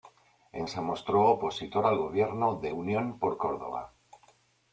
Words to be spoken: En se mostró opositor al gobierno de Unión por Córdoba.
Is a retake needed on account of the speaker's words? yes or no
no